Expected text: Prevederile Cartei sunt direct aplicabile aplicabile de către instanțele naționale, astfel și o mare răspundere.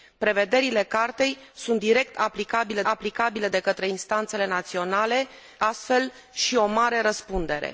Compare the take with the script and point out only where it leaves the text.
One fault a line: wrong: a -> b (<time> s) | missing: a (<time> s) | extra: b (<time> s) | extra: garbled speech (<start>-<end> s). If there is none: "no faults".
no faults